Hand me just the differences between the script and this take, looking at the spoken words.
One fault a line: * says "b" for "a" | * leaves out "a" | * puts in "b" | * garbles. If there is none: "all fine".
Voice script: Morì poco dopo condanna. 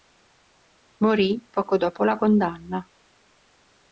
* puts in "la"